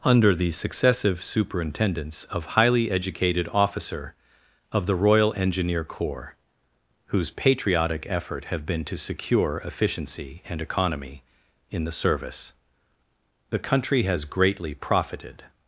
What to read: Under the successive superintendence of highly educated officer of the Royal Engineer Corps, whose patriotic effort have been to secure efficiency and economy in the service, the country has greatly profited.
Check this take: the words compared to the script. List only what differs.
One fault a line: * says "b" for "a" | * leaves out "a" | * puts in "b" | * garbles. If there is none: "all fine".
all fine